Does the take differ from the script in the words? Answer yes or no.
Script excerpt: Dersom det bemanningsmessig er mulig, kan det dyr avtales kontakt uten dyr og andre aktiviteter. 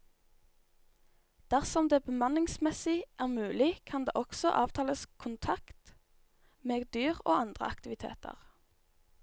yes